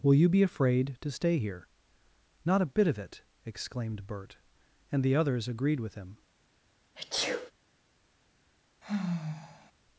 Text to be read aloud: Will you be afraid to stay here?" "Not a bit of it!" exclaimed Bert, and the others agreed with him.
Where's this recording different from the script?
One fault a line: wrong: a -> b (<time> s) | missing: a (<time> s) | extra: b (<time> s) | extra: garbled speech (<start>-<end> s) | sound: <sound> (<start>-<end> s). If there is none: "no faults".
sound: sneeze (6.9-7.5 s)
sound: sigh (8.8-9.7 s)